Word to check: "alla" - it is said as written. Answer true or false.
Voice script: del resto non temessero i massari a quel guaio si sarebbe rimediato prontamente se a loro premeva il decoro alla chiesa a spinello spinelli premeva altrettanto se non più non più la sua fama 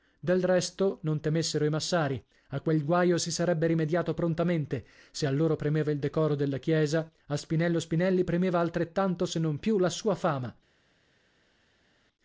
false